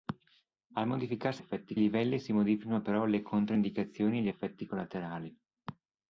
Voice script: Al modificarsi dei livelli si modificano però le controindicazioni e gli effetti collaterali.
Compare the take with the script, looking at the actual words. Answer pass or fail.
fail